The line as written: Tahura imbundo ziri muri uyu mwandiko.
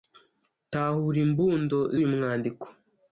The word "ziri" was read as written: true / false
false